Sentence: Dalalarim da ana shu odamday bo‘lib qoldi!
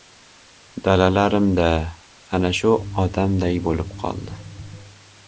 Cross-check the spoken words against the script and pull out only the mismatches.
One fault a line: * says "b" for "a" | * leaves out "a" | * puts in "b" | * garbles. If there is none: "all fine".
all fine